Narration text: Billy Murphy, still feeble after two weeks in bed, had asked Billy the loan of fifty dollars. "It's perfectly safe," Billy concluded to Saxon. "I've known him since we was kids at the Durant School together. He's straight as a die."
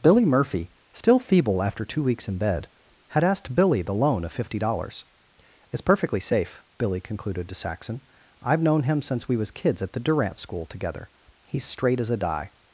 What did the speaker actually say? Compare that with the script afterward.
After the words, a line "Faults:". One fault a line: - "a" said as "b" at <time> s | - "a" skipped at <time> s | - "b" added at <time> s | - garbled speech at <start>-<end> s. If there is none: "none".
Billy Murphy, still feeble after two weeks in bed, had asked Billy the loan of fifty dollars. "It's perfectly safe," Billy concluded to Saxon. "I've known him since we was kids at the Durant School together. He's straight as a die."
Faults:
none